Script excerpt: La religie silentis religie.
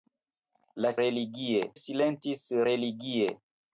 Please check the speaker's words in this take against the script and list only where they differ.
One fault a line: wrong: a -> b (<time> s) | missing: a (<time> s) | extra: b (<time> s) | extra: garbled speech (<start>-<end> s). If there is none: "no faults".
no faults